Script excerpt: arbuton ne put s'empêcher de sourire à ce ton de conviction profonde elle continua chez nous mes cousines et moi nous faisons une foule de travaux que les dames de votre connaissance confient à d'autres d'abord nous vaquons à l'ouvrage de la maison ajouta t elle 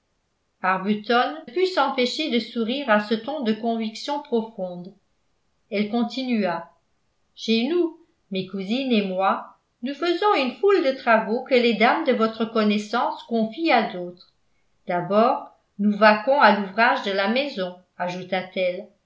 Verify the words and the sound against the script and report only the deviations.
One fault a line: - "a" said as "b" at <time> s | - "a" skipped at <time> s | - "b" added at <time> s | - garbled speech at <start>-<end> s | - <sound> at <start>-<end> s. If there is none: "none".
- "ne" skipped at 1.4 s